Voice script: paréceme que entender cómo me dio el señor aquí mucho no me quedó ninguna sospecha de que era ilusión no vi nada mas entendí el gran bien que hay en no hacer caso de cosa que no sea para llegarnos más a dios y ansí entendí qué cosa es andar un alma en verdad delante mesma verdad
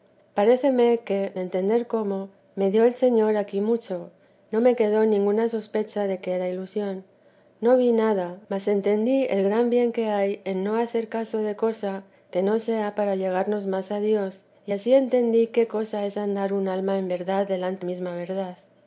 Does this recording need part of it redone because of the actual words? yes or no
no